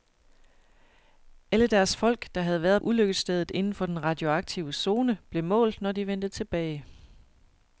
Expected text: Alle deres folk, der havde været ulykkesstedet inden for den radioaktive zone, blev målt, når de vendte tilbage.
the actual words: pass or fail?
pass